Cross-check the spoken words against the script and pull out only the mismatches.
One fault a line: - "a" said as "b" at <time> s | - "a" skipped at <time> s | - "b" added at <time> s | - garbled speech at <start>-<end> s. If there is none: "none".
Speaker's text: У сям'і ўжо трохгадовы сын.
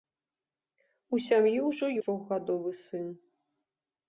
none